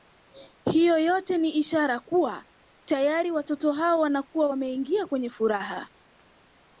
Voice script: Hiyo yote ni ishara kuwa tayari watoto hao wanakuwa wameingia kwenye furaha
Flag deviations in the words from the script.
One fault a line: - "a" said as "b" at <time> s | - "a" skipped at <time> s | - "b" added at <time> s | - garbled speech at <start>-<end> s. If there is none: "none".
none